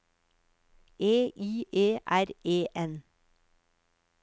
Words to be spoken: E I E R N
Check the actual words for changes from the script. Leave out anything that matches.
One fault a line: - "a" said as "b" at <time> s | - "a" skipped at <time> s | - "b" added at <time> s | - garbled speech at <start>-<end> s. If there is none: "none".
- "E" added at 2.4 s